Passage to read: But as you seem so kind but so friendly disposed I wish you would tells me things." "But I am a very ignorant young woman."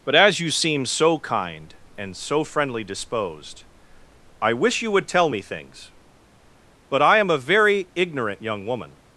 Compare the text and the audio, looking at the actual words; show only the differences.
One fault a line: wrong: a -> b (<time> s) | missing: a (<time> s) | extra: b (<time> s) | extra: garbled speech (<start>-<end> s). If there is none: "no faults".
wrong: but -> and (1.9 s)
wrong: tells -> tell (5.1 s)